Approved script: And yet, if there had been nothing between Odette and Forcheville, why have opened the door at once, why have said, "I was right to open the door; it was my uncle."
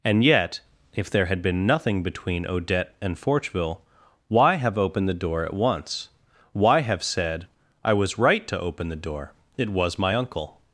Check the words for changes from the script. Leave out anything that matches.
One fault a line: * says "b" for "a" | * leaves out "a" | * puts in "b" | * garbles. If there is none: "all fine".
all fine